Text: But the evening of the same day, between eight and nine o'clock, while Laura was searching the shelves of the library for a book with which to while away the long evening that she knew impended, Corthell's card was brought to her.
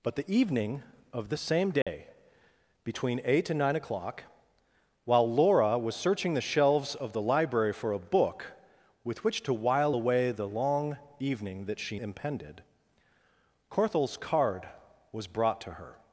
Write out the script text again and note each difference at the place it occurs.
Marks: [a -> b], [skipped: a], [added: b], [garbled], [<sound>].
But the evening of the same day, [dropout] between eight and nine o'clock, while Laura was searching the shelves of the library for a book with which to while away the long evening that she [skipped: knew] impended, Corthell's card was brought to her.